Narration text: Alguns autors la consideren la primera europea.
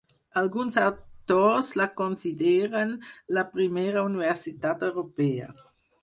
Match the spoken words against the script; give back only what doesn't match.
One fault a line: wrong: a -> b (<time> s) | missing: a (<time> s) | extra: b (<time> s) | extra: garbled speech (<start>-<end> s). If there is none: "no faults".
extra: universitat (4.1 s)